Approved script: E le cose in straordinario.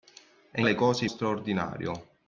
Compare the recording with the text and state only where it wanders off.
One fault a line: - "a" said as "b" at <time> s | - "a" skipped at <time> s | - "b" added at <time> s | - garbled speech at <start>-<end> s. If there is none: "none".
none